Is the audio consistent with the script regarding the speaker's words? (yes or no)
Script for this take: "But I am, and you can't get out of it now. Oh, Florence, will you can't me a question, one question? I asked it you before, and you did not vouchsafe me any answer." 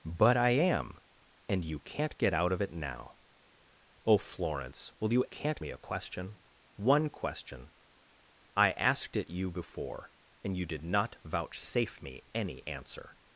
yes